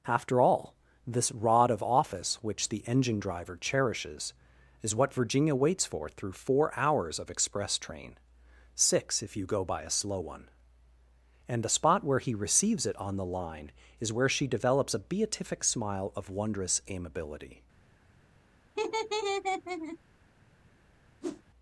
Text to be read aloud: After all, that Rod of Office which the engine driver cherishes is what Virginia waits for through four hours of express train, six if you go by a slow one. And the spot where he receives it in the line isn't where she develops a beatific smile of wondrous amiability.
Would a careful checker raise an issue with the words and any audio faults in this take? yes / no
yes